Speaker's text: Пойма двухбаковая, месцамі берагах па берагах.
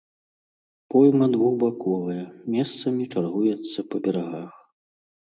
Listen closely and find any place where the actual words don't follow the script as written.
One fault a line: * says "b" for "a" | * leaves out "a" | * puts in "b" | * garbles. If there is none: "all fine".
* says "чаргуецца" for "берагах"